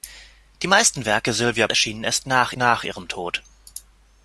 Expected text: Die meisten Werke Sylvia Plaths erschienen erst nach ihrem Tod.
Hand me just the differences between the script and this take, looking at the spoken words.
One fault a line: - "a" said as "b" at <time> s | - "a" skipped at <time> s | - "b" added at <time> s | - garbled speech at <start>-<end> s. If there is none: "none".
- "Plaths" skipped at 1.7 s
- "nach" added at 2.6 s